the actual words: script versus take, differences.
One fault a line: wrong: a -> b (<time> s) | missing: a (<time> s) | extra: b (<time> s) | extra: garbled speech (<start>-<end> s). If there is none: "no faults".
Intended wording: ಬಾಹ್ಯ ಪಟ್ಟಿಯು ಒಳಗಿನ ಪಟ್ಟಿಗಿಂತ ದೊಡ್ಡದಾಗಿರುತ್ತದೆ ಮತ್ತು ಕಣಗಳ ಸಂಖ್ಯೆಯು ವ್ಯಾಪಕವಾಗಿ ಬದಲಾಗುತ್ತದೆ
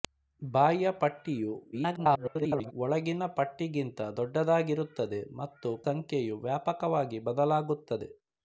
extra: garbled speech (1.7-2.7 s)
missing: ಕಣಗಳ (5.7 s)